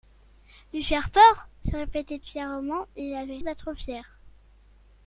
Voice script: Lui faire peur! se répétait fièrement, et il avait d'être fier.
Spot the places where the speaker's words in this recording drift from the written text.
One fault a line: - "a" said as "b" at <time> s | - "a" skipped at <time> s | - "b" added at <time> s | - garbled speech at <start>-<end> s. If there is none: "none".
none